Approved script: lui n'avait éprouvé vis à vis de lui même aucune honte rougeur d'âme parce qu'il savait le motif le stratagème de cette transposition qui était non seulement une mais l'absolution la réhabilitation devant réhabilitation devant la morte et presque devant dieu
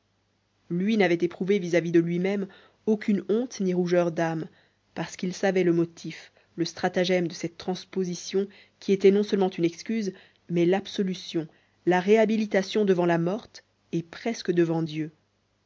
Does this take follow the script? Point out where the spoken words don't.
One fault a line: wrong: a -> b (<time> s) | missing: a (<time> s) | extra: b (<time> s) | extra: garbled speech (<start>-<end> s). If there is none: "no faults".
extra: ni (3.6 s)
extra: excuse (9.6 s)
missing: réhabilitation devant (13.1 s)